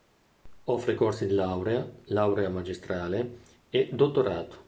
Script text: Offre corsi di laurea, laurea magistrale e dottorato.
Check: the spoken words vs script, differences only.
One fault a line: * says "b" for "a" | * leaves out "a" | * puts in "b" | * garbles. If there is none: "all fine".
all fine